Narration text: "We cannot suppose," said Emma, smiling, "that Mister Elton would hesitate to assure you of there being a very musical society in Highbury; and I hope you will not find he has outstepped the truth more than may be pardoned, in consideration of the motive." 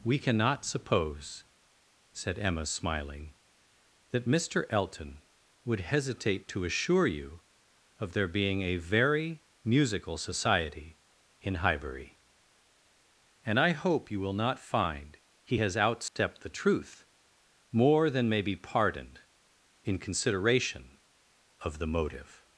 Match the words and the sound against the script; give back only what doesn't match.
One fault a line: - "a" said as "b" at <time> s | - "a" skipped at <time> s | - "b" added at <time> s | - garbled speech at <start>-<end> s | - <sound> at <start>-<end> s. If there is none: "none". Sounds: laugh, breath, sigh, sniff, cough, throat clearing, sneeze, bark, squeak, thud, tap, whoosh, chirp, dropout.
- dropout at 16.1-16.2 s